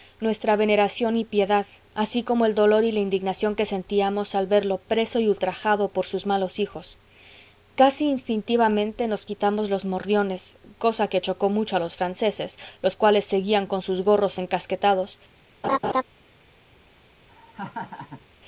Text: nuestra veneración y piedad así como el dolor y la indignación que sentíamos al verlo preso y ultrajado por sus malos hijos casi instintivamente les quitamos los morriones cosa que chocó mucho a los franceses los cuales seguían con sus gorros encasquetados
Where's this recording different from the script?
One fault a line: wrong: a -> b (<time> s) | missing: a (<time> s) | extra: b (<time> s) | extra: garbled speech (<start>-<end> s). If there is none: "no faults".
wrong: les -> nos (9.1 s)